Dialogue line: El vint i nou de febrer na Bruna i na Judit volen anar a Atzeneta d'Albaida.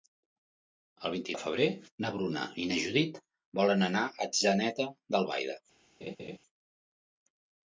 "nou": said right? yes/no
no